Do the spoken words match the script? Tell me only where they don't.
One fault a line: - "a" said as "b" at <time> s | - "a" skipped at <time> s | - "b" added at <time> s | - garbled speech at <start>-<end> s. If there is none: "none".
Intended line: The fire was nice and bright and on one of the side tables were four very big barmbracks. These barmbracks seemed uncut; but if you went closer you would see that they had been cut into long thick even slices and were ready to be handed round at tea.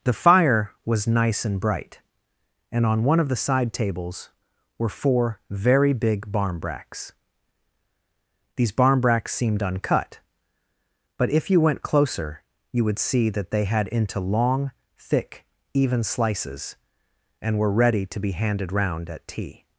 - "been cut" skipped at 13.9 s